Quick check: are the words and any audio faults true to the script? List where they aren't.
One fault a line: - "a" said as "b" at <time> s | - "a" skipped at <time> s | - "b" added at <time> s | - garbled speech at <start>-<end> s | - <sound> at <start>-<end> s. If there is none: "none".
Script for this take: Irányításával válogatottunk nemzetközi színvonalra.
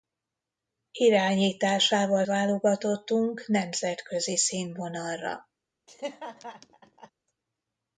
- laugh at 5.9-7.1 s